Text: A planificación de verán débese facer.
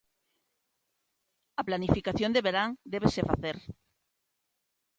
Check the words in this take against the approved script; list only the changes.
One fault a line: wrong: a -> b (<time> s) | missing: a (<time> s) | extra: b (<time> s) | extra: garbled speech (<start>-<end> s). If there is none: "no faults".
no faults